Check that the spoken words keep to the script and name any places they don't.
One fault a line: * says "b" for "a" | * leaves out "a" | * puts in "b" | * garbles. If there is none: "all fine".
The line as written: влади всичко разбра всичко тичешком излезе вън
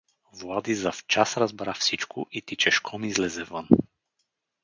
* says "завчас" for "всичко"
* puts in "и"